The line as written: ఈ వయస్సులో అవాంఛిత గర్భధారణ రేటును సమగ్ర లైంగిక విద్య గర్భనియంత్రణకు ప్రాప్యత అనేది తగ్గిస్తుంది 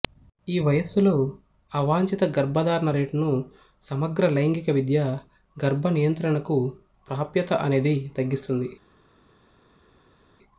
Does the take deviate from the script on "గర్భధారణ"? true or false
false